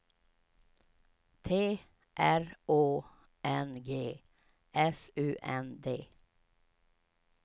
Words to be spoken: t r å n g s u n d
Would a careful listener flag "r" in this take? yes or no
no